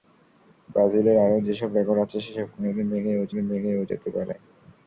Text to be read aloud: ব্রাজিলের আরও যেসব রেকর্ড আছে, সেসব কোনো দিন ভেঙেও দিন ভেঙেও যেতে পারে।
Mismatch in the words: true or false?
false